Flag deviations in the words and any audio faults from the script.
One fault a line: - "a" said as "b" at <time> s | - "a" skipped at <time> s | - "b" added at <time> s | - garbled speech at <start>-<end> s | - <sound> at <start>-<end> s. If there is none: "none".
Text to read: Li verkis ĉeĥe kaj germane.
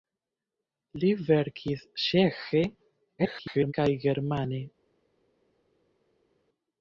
- garbled speech at 3.2-3.7 s